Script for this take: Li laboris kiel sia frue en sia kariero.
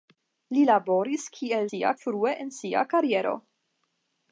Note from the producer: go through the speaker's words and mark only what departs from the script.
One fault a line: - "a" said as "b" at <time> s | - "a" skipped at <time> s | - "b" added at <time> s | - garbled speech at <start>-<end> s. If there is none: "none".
none